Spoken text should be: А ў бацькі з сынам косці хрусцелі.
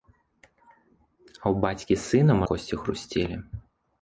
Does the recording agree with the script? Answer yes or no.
yes